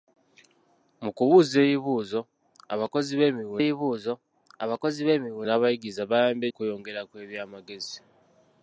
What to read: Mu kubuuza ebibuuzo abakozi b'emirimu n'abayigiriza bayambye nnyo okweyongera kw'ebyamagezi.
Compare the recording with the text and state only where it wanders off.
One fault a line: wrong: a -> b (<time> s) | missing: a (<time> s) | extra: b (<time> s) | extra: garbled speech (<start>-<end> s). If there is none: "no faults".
extra: ebibuuzo abakozi b'emirimu (3.6 s)
missing: nnyo (6.5 s)